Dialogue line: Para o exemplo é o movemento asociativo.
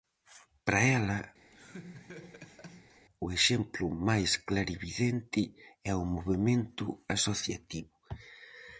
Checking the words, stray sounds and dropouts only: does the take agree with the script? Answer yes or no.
no